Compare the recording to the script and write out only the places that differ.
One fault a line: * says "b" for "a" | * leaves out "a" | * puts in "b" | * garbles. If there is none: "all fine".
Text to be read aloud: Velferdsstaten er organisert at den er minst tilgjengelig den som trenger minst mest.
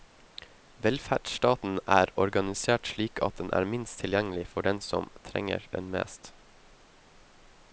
* puts in "slik"
* puts in "for"
* says "den" for "minst"